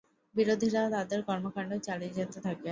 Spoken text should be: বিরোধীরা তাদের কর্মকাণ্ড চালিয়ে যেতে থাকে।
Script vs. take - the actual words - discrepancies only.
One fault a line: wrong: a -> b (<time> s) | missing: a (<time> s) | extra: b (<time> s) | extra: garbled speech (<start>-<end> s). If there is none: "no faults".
no faults